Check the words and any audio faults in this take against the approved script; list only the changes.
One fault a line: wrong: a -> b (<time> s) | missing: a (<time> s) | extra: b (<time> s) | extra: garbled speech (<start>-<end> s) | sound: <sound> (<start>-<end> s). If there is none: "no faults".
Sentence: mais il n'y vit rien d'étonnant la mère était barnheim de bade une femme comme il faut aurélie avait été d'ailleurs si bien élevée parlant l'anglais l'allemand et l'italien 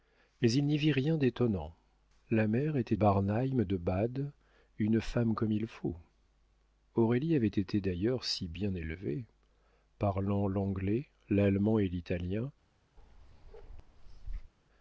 sound: bark (13.0-14.5 s)